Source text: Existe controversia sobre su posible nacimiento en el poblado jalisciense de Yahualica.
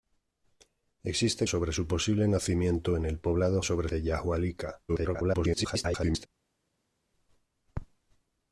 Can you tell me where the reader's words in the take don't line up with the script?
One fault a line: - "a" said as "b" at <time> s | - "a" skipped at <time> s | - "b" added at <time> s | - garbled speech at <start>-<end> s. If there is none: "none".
- "controversia" skipped at 1.4 s
- "jalisciense" said as "sobre" at 3.6 s
- garbled speech at 4.9-6.3 s